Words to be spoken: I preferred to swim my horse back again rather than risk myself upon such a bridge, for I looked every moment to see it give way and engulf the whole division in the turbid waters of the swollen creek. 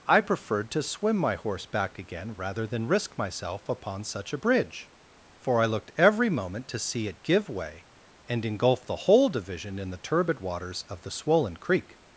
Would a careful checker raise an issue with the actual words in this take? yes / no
no